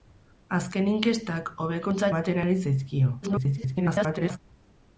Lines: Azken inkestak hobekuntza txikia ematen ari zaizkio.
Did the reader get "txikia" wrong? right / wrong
wrong